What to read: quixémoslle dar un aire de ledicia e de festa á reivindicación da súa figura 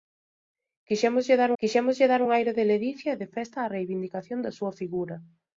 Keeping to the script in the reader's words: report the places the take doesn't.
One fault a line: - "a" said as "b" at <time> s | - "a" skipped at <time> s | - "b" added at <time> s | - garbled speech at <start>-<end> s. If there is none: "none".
- "quixémoslle dar" added at 1.6 s